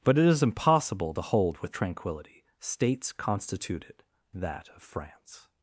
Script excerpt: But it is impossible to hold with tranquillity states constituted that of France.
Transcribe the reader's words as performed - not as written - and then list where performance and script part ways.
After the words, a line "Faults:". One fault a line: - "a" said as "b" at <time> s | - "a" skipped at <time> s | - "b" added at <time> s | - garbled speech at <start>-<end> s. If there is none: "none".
But it is impossible to hold with tranquillity states constituted that of France.
Faults:
none